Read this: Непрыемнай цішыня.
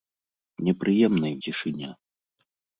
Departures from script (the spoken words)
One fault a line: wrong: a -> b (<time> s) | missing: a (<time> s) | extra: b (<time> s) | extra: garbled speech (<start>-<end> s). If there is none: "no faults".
no faults